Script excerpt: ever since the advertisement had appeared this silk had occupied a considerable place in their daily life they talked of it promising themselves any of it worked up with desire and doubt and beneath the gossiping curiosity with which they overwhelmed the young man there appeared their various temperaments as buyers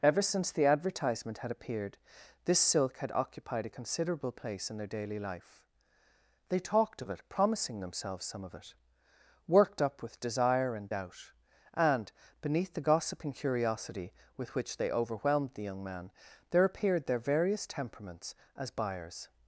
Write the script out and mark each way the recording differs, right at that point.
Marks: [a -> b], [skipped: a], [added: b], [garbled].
ever since the advertisement had appeared this silk had occupied a considerable place in their daily life they talked of it promising themselves [any -> some] of it worked up with desire and doubt and beneath the gossiping curiosity with which they overwhelmed the young man there appeared their various temperaments as buyers